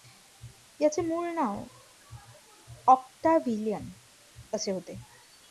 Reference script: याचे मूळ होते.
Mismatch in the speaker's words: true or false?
true